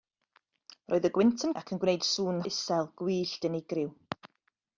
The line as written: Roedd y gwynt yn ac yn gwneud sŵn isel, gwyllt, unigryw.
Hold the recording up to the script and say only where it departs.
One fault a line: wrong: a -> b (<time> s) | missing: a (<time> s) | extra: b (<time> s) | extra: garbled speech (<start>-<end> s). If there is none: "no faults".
no faults